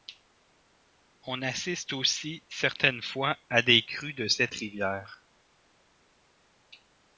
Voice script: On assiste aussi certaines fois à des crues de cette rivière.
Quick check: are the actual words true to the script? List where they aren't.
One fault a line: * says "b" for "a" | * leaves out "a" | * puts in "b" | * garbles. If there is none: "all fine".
all fine